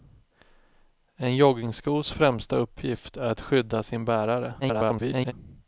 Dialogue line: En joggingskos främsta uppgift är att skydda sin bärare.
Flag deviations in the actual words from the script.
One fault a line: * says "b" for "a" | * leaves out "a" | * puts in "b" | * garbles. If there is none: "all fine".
* garbles